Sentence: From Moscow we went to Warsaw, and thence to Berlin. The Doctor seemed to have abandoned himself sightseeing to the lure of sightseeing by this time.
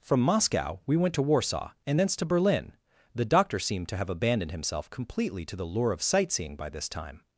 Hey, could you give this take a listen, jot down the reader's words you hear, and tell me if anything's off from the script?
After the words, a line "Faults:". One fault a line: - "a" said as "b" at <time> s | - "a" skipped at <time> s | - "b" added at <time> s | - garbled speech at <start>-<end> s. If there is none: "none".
From Moscow we went to Warsaw, and thence to Berlin. The Doctor seemed to have abandoned himself completely to the lure of sightseeing by this time.
Faults:
- "sightseeing" said as "completely" at 4.9 s